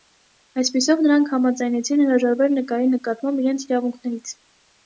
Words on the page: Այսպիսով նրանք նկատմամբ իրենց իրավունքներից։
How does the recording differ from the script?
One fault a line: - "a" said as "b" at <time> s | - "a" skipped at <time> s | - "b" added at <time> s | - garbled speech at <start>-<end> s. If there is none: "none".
- "համաձայնեցին հրաժարվել նկարի" added at 1.3 s